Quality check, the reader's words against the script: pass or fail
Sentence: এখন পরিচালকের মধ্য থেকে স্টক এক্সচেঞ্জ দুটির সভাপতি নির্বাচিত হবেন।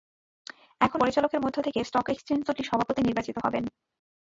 pass